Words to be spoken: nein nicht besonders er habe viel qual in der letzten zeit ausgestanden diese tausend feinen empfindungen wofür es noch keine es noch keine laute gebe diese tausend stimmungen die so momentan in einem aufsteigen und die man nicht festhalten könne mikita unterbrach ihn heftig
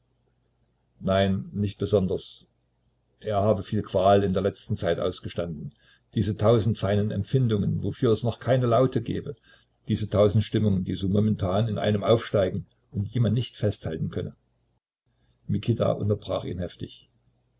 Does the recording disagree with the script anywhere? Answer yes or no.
yes